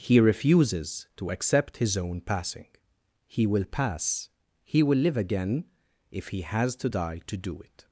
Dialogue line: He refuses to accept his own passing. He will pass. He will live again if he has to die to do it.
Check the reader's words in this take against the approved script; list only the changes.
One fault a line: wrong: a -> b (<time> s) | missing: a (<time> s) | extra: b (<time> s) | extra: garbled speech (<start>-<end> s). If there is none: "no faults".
no faults